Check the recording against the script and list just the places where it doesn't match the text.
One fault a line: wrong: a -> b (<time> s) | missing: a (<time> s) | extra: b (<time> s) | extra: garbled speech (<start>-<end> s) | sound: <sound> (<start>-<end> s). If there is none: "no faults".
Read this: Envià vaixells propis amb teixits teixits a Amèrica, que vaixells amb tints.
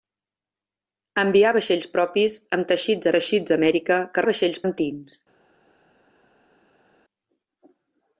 no faults